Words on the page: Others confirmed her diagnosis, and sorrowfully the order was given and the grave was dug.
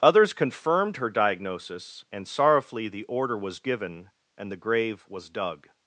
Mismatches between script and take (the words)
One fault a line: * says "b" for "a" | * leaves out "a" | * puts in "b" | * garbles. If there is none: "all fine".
all fine